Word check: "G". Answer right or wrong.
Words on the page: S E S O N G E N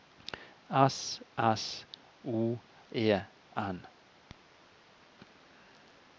wrong